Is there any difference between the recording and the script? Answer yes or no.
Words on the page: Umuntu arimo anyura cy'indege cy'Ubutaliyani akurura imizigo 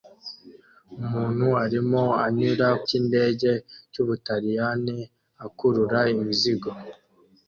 no